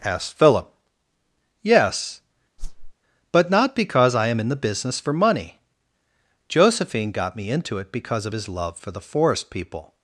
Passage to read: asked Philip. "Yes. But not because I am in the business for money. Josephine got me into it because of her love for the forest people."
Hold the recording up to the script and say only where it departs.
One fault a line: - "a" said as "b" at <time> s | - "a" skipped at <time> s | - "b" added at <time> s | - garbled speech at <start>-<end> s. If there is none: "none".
- "her" said as "his" at 8.3 s